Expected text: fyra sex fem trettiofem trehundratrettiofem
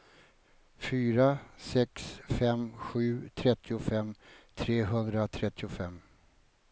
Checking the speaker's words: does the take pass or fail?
fail